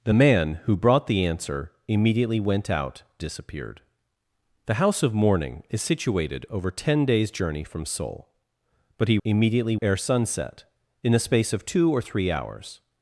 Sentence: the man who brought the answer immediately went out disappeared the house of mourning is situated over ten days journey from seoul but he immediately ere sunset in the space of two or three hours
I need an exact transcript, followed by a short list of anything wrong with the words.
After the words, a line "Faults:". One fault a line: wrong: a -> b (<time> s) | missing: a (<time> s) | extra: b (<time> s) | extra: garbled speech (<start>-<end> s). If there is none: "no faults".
the man who brought the answer immediately went out disappeared the house of mourning is situated over ten days journey from seoul but he immediately ere sunset in the space of two or three hours
Faults:
no faults